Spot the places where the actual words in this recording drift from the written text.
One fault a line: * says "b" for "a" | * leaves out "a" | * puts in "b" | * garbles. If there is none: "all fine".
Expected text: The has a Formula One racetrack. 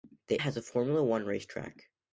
all fine